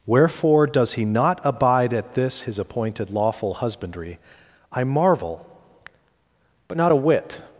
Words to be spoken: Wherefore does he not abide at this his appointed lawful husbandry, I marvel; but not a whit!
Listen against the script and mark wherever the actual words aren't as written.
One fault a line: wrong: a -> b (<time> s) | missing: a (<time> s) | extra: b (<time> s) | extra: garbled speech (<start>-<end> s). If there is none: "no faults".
no faults